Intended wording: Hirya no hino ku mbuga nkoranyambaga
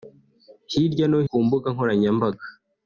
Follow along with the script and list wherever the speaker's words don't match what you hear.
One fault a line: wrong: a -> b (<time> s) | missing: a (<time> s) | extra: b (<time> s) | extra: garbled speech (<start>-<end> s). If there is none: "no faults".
missing: hino (1.2 s)